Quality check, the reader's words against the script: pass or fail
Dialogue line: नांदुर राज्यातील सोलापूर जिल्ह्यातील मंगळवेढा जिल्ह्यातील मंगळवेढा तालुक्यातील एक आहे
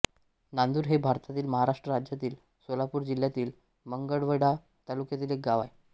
fail